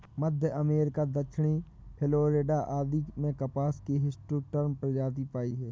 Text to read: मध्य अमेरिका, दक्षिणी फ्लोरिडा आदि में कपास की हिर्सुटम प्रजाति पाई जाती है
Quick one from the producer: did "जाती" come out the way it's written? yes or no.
no